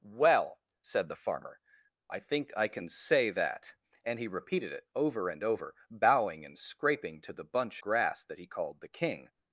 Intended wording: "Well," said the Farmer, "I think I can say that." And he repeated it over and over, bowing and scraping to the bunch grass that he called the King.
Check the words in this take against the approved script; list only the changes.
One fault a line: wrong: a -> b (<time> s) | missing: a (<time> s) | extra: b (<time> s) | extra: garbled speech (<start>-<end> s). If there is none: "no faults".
no faults